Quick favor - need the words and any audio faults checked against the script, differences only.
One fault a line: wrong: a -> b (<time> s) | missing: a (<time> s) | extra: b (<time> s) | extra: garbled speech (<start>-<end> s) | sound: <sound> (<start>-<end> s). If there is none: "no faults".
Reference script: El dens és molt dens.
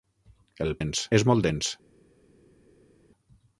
no faults